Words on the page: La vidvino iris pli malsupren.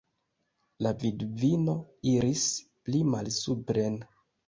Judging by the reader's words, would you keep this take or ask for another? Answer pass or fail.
pass